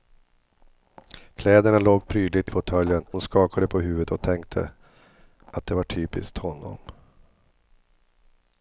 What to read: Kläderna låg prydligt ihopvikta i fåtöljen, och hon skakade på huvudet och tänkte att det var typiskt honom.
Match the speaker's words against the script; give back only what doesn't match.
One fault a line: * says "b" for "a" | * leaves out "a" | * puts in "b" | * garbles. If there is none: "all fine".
* leaves out "ihopvikta"
* leaves out "och"